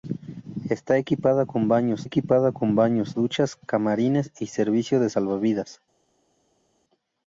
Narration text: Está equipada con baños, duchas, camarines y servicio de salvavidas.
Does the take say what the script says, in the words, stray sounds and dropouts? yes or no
no